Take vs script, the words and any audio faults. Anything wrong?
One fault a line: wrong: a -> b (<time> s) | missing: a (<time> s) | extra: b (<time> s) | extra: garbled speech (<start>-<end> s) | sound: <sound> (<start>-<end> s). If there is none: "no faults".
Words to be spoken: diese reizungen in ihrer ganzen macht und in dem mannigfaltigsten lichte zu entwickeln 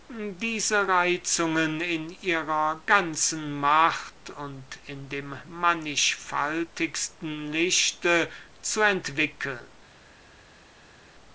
no faults